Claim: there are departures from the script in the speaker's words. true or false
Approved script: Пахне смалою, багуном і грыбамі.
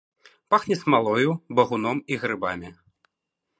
false